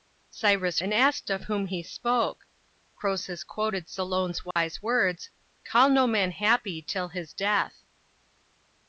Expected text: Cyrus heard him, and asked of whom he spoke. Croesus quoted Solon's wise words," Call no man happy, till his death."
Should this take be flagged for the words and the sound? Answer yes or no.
yes